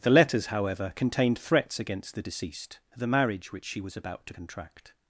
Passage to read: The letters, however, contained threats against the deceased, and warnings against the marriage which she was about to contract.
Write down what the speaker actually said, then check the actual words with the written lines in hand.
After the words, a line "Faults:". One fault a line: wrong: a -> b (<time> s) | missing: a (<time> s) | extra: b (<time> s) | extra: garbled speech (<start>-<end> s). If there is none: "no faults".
The letters, however, contained threats against the deceased, the marriage which she was about to contract.
Faults:
missing: and warnings against (2.8 s)